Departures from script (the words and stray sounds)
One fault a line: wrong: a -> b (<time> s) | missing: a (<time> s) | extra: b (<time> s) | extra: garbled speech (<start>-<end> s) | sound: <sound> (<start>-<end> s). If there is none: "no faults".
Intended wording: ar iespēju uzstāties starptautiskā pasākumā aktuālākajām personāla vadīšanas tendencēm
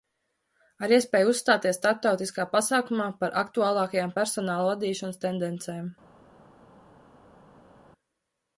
extra: par (3.2 s)